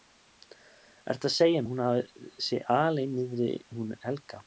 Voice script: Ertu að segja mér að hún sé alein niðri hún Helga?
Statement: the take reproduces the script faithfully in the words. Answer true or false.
false